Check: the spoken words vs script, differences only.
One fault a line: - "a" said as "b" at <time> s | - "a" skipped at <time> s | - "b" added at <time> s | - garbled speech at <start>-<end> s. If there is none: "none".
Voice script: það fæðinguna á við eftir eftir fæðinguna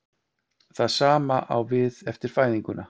- "fæðinguna" said as "sama" at 0.9 s
- "eftir" skipped at 2.3 s